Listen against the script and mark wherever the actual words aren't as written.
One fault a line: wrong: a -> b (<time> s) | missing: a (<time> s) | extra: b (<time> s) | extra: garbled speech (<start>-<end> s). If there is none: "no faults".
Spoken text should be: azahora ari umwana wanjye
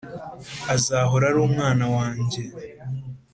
no faults